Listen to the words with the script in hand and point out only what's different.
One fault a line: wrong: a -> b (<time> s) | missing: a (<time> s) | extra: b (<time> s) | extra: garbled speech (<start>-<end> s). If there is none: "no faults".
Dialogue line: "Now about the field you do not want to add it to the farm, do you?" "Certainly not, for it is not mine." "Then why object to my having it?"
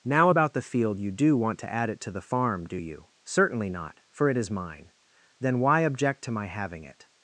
missing: not (1.4 s)
missing: not (4.5 s)